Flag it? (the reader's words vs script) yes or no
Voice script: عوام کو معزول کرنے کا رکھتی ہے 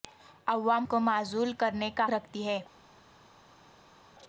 no